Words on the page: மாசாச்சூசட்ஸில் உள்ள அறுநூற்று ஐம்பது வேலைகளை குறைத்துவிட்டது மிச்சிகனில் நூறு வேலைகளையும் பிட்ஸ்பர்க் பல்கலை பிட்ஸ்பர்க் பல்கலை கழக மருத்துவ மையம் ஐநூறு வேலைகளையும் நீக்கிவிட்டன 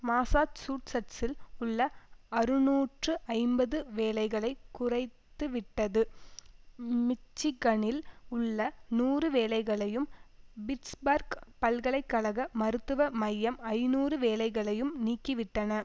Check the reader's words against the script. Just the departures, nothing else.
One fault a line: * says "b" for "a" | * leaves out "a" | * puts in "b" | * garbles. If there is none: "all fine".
* puts in "உள்ள"
* leaves out "பிட்ஸ்பர்க் பல்கலை"